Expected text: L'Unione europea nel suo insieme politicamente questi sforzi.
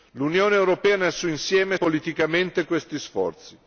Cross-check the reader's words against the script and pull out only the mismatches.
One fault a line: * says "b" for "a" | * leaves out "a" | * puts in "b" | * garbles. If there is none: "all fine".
all fine